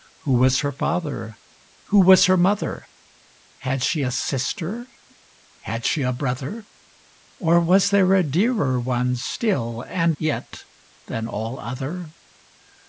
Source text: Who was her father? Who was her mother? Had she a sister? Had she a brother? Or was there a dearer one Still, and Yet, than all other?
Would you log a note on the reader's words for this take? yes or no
no